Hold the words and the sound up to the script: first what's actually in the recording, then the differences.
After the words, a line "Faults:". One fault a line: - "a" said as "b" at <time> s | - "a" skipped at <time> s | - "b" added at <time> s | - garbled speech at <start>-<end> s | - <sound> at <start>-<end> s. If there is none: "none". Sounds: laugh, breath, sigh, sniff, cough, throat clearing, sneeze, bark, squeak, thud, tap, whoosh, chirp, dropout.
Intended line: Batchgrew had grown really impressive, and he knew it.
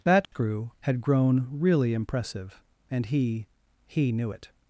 Batchgrew had grown really impressive, and he he knew it.
Faults:
- dropout at 0.2-0.3 s
- "he" added at 3.8 s